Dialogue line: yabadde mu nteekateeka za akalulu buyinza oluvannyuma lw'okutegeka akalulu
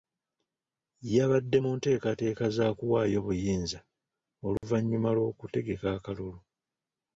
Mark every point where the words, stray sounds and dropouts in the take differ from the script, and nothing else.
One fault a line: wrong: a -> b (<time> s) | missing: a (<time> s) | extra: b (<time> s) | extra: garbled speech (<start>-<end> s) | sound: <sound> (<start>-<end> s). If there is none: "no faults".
wrong: akalulu -> kuwaayo (2.8 s)
sound: dropout (4.6-4.6 s)